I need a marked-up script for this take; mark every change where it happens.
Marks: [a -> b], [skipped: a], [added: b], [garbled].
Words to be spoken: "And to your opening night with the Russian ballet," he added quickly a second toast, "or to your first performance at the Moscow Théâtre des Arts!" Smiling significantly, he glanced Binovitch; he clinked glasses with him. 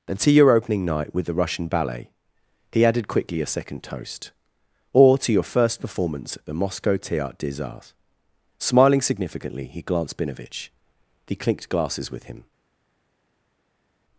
"And to your opening night with the Russian ballet," he added quickly a second toast, "or to your first performance at the Moscow Théâtre des Arts!" Smiling significantly, he glanced Binovitch; he clinked glasses with him.